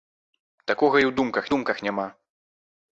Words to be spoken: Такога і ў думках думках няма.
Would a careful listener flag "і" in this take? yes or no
no